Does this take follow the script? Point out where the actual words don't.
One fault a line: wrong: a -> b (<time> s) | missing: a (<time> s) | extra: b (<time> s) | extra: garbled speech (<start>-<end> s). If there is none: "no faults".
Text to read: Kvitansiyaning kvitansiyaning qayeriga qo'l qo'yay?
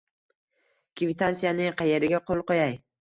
missing: kvitansiyaning (1.8 s)